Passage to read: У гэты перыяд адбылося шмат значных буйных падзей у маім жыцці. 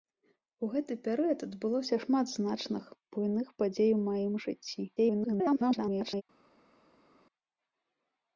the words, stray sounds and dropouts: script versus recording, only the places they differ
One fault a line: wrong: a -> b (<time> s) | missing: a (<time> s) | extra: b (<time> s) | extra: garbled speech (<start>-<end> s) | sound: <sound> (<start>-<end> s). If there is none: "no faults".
extra: garbled speech (5.0-6.2 s)